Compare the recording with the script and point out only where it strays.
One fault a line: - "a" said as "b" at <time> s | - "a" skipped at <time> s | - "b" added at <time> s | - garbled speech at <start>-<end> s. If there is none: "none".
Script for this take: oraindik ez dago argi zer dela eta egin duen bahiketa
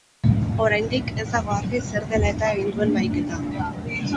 none